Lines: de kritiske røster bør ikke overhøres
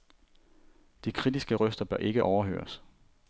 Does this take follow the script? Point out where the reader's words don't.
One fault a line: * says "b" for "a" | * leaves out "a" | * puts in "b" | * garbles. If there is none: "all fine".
all fine